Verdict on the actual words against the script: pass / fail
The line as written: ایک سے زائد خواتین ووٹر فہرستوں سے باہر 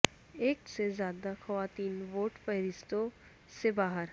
pass